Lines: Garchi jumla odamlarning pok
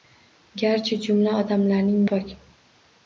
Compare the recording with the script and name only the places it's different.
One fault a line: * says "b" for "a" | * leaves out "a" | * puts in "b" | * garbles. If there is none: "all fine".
all fine